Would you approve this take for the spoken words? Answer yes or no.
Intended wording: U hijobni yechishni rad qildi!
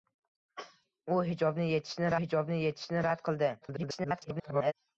no